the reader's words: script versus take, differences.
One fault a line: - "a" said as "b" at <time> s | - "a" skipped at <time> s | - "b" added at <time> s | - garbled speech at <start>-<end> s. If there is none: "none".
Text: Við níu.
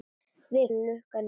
none